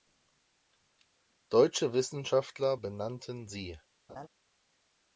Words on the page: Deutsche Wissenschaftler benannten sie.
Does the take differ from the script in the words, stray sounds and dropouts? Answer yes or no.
yes